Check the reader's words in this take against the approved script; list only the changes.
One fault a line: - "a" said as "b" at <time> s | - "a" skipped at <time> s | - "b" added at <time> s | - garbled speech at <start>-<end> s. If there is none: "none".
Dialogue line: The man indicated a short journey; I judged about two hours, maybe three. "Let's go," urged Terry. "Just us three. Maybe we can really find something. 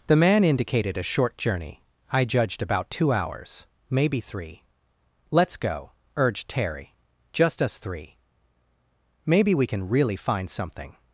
none